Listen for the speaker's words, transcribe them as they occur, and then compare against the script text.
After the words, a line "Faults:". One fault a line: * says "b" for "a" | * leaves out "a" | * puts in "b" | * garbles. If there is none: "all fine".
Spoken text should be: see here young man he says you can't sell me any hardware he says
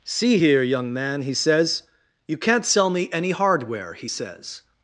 see here young man he says you can't sell me any hardware he says
Faults:
all fine